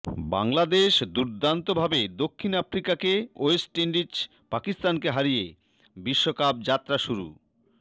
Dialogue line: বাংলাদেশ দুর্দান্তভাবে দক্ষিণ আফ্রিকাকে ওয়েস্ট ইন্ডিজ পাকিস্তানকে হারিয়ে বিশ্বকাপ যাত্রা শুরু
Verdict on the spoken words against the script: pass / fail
pass